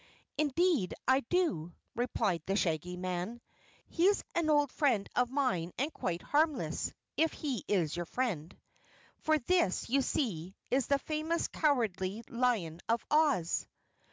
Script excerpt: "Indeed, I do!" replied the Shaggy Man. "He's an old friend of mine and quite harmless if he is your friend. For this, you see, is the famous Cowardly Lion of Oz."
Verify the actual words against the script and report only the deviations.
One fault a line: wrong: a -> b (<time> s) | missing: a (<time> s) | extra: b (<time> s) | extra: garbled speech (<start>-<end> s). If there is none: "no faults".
no faults